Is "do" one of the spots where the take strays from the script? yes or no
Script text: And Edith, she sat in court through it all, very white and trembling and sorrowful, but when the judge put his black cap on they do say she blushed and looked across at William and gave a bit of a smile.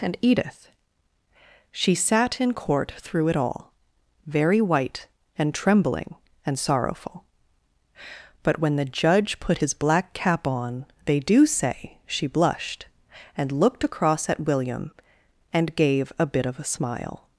no